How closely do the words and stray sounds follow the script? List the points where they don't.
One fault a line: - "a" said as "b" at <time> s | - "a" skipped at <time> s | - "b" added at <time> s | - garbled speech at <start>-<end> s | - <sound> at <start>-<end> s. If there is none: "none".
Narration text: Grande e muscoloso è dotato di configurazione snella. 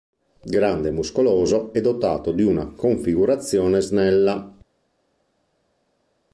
- "una" added at 2.4 s